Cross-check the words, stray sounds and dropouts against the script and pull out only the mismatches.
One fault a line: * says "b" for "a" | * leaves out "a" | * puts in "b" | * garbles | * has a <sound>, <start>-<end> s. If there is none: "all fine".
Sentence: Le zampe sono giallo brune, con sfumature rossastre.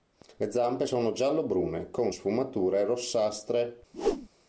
* has a whoosh, 3.9-4.3 s